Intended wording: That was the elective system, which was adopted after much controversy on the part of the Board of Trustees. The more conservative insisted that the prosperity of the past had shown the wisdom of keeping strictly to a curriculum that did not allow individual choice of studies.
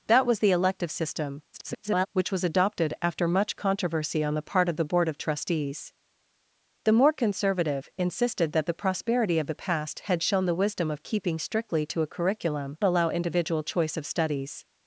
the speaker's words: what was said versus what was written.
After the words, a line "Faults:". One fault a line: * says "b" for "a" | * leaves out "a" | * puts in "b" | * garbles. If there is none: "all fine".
That was the elective system, [garbled] which was adopted after much controversy on the part of the Board of Trustees. The more conservative insisted that the prosperity of the past had shown the wisdom of keeping strictly to a curriculum allow individual choice of studies.
Faults:
* garbles
* leaves out "that did not"